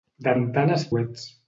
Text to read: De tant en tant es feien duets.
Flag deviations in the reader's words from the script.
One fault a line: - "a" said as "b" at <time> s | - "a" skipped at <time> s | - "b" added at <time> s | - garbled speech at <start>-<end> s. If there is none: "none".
- "tant" skipped at 0.3 s
- "feien" skipped at 0.9 s